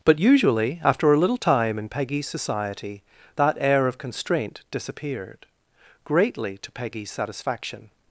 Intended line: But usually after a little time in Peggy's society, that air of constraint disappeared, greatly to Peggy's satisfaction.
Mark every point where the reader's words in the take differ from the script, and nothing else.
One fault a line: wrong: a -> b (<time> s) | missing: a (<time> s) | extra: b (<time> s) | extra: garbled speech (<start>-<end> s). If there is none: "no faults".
no faults